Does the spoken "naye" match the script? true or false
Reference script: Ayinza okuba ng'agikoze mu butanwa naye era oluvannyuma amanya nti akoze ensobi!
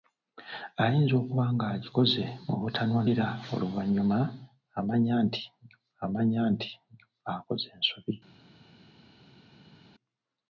false